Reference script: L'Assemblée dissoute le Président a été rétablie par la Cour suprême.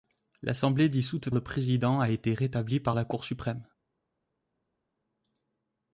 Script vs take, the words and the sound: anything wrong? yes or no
no